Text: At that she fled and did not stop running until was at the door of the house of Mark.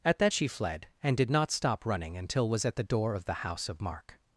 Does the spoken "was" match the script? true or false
true